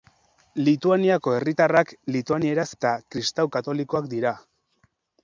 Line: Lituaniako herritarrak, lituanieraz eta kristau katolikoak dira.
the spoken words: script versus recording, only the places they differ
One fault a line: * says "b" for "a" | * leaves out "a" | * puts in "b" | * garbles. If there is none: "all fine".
all fine